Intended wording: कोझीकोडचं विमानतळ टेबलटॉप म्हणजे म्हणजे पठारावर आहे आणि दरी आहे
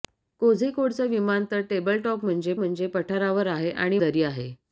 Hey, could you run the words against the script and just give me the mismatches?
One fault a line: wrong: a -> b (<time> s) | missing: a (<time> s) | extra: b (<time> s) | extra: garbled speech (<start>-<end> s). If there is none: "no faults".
no faults